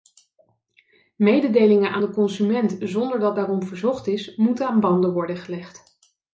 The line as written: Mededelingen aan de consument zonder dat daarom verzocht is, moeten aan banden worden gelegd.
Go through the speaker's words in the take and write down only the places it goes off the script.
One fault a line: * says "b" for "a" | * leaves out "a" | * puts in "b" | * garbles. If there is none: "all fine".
all fine